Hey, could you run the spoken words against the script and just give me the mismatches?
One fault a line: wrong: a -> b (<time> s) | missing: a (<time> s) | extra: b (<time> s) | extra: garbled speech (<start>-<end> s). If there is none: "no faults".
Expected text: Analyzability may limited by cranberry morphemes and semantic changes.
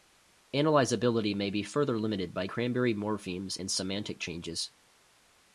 extra: be further (1.5 s)